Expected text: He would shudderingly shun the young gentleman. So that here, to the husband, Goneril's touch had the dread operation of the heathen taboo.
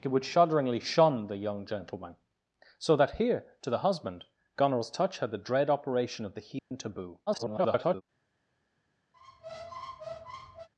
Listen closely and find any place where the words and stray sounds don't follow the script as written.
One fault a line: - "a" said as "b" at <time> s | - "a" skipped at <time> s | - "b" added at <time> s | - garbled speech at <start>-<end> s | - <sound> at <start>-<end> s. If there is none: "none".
- dropout at 6.6-6.7 s
- garbled speech at 7.3-8.0 s
- squeak at 9.1-10.7 s